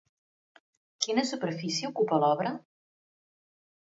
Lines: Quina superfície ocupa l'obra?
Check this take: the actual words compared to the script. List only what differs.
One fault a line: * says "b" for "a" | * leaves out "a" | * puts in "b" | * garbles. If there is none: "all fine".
all fine